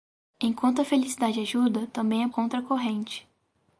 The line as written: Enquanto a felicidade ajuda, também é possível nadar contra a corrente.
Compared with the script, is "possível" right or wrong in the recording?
wrong